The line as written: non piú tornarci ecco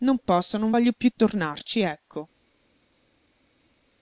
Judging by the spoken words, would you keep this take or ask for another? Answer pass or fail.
fail